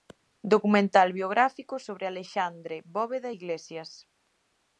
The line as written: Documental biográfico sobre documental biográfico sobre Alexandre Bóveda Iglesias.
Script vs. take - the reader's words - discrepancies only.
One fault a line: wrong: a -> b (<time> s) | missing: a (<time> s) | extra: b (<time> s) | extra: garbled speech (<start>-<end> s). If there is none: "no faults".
missing: documental biográfico sobre (2.1 s)